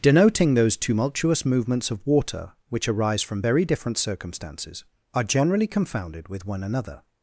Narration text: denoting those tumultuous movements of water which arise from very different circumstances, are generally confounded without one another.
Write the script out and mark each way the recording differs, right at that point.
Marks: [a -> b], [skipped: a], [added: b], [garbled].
denoting those tumultuous movements of water which arise from very different circumstances, are generally confounded [without -> with] one another.